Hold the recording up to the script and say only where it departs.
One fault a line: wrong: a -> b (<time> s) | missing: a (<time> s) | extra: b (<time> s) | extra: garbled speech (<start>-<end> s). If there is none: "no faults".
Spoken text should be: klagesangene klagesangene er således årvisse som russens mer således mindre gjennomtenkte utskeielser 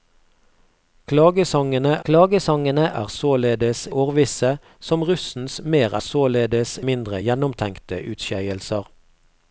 no faults